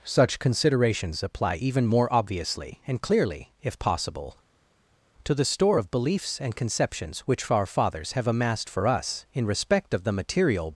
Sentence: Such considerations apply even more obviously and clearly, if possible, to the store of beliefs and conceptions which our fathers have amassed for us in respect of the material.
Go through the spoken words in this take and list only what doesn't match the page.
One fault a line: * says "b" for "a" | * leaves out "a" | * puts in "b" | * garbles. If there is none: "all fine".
all fine